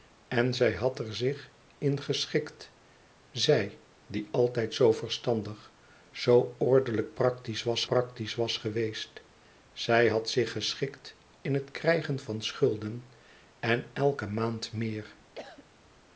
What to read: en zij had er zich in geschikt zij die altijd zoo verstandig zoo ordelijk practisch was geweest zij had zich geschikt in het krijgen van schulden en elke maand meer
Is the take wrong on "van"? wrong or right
right